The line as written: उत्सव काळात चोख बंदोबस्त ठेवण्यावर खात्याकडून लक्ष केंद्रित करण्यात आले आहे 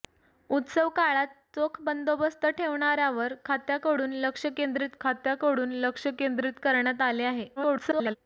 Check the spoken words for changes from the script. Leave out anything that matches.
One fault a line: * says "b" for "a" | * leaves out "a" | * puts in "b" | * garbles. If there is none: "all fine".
* puts in "खात्याकडून लक्ष केंद्रित"
* garbles